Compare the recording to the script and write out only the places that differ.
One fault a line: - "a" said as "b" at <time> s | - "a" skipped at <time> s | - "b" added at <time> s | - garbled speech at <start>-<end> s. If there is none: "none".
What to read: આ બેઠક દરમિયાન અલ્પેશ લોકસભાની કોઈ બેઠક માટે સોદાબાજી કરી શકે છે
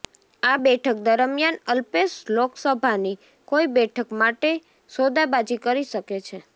none